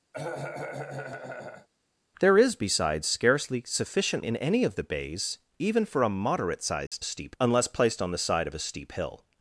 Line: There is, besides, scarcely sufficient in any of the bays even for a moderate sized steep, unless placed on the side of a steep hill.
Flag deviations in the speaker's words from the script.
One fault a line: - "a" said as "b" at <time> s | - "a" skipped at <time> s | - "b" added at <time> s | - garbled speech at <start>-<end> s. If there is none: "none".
none